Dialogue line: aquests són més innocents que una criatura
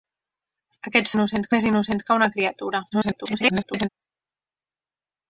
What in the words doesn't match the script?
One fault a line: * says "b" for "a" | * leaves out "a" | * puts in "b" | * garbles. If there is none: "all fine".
* says "innocents" for "són"
* garbles